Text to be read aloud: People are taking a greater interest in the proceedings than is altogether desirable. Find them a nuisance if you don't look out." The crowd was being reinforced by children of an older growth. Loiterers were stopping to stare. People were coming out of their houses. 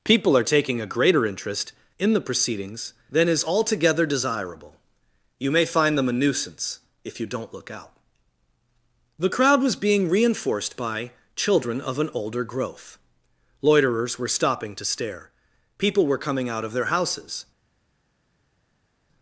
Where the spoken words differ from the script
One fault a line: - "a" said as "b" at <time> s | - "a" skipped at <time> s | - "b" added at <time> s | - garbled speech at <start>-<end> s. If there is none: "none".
- "You may" added at 5.4 s